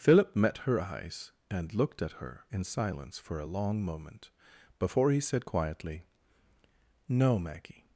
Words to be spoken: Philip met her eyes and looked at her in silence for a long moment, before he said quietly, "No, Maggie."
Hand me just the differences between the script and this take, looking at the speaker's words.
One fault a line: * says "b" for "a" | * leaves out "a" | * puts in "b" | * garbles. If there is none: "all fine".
all fine